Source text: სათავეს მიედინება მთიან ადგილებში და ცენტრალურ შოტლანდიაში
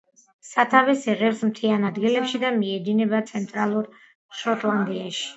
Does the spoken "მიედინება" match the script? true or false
false